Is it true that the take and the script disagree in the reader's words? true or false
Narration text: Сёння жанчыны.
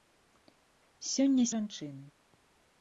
false